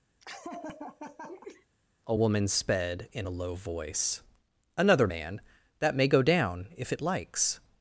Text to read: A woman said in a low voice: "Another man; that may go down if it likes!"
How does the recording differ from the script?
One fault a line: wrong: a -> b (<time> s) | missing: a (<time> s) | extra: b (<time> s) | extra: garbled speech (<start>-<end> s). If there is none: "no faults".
wrong: said -> sped (2.5 s)